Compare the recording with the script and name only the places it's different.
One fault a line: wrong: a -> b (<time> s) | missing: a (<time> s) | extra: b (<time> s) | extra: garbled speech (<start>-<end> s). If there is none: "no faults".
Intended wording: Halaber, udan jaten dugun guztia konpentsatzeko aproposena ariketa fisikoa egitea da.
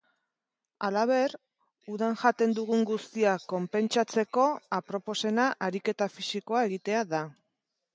no faults